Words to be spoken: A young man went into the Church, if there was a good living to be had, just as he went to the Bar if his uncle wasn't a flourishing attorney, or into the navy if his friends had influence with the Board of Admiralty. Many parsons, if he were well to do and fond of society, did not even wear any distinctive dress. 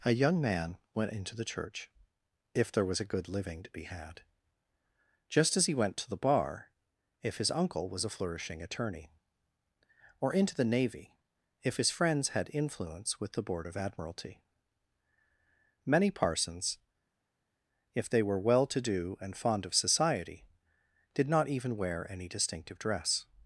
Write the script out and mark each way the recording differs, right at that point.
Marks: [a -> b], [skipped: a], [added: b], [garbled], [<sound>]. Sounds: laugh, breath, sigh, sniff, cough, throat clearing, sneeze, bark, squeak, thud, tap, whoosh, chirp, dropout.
A young man went into the Church, if there was a good living to be had, just as he went to the Bar if his uncle [wasn't -> was] a flourishing attorney, or into the navy if his friends had influence with the Board of Admiralty. Many parsons, if [he -> they] were well to do and fond of society, did not even wear any distinctive dress.